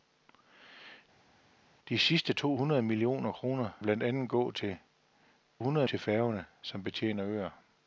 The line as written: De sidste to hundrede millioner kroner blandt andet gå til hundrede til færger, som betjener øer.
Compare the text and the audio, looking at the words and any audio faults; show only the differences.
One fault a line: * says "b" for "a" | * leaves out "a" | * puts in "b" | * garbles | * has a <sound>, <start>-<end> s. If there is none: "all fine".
all fine